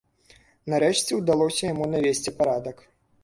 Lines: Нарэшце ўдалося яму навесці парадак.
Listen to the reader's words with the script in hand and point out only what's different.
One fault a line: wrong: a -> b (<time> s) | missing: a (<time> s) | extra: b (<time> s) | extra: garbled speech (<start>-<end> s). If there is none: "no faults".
no faults